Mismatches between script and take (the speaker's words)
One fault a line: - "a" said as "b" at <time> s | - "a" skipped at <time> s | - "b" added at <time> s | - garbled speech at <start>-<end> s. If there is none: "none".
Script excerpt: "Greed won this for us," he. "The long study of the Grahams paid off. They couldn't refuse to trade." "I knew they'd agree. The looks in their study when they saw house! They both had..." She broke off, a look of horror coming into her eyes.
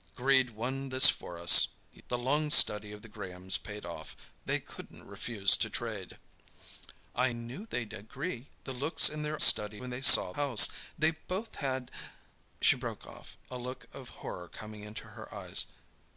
none